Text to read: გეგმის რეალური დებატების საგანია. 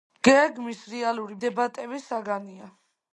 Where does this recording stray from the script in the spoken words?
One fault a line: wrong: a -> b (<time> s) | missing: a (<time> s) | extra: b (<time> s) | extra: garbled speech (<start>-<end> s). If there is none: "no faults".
no faults